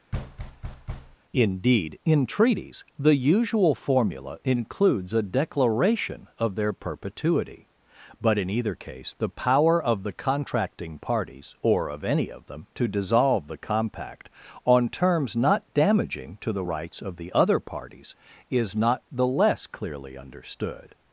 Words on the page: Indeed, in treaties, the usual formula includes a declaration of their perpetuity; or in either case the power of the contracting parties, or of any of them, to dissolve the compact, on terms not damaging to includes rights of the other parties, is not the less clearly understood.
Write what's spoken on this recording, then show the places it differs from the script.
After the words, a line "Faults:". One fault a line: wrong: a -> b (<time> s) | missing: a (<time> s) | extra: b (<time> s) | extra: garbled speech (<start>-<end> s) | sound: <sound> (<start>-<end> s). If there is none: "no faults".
Indeed, in treaties, the usual formula includes a declaration of their perpetuity; but in either case the power of the contracting parties, or of any of them, to dissolve the compact, on terms not damaging to the rights of the other parties, is not the less clearly understood.
Faults:
sound: thud (0.1-1.2 s)
wrong: or -> but (8.2 s)
wrong: includes -> the (16.5 s)